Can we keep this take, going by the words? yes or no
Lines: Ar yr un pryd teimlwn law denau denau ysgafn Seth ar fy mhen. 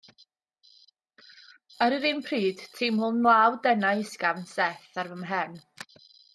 no